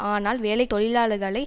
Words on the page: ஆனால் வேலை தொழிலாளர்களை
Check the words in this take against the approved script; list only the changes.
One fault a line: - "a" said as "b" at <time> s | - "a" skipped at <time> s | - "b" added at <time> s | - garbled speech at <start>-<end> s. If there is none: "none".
none